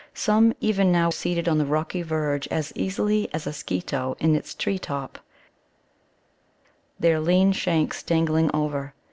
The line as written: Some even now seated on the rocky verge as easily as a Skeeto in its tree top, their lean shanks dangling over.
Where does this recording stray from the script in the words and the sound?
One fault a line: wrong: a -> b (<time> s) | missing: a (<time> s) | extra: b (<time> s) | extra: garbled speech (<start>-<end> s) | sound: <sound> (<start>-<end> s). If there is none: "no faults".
no faults